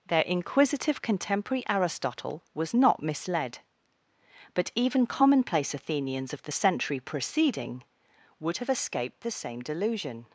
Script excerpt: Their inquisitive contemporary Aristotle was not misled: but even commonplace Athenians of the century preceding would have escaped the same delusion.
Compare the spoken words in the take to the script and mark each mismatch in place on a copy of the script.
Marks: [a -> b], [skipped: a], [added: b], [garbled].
Their inquisitive contemporary Aristotle was not misled: but even commonplace Athenians of the century preceding would have escaped the same delusion.